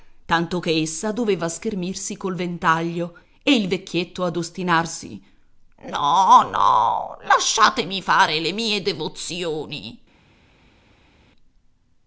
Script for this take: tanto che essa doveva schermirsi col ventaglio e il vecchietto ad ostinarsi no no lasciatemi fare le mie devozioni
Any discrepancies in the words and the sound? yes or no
no